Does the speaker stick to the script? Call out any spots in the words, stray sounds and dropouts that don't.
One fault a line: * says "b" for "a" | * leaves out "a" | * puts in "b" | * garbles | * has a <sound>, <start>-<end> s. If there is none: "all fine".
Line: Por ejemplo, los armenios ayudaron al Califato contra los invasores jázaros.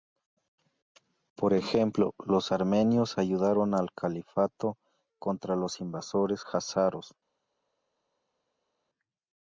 all fine